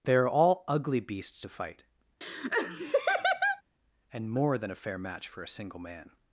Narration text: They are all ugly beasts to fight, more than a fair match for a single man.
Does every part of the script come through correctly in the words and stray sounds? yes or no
no